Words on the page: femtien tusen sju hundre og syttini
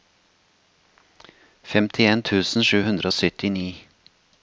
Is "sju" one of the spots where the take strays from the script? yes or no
no